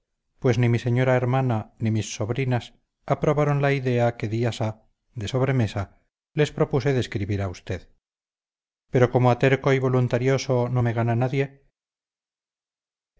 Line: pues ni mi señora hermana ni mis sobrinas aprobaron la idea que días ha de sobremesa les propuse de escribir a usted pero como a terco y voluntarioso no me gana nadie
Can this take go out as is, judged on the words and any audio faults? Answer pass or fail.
pass